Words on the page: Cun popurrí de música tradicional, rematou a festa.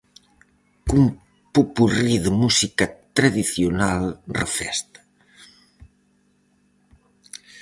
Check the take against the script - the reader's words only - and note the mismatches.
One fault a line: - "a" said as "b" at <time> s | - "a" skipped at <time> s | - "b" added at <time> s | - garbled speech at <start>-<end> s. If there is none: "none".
- "rematou" skipped at 4.0 s